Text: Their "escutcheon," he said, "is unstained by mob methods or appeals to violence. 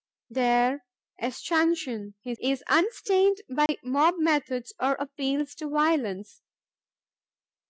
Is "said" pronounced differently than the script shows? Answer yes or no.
yes